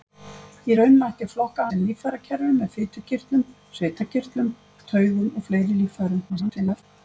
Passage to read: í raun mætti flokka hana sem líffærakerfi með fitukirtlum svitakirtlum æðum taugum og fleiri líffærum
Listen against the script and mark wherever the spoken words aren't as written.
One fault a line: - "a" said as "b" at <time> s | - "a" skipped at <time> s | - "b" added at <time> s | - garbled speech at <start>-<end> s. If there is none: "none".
- "hana" skipped at 1.6 s
- "æðum" skipped at 4.5 s
- garbled speech at 6.3-6.8 s